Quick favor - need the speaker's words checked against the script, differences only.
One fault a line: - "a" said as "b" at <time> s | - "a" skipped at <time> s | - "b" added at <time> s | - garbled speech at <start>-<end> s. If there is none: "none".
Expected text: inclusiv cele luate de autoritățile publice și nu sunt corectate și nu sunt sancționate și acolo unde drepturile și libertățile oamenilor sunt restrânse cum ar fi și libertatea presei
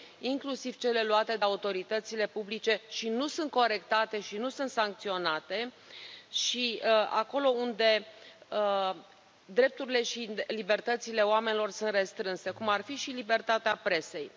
none